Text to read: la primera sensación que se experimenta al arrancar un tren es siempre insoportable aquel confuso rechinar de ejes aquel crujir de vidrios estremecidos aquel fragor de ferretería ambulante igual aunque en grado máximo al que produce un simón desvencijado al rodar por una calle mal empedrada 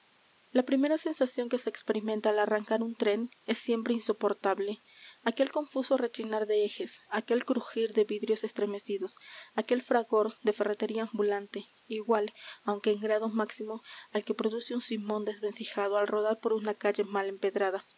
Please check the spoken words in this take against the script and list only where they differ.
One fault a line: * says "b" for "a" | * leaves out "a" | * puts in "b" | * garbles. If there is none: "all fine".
all fine